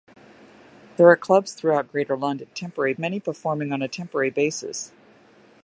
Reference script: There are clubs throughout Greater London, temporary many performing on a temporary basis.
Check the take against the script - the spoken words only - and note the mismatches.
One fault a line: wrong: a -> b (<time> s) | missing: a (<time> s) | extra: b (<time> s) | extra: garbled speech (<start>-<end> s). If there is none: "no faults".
no faults